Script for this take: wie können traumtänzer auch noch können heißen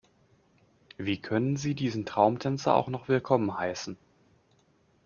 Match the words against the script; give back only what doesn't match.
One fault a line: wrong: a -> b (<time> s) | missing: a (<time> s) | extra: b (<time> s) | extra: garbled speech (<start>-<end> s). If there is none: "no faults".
extra: sie diesen (1.6 s)
wrong: können -> willkommen (3.1 s)